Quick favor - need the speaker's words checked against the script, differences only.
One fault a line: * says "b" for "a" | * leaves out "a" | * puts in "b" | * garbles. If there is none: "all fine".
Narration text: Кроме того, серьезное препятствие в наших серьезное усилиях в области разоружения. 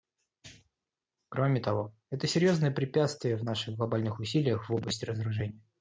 * puts in "это"
* says "глобальных" for "серьезное"